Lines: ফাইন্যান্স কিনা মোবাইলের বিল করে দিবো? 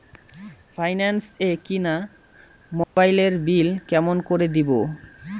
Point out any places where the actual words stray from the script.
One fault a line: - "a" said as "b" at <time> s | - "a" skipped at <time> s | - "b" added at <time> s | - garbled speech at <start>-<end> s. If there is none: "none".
- "এ" added at 1.4 s
- "কেমন" added at 3.9 s